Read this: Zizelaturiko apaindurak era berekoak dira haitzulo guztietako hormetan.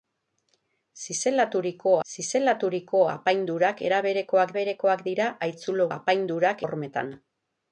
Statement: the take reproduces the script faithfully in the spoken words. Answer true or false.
false